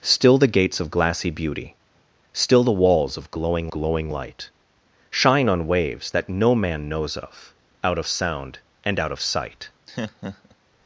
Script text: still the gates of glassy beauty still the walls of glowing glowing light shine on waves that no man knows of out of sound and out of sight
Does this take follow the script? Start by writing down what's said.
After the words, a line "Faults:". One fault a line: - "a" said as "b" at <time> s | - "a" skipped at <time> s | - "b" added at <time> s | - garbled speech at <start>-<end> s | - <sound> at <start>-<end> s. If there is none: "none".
still the gates of glassy beauty still the walls of glowing glowing light shine on waves that no man knows of out of sound and out of sight
Faults:
- laugh at 9.9-10.6 s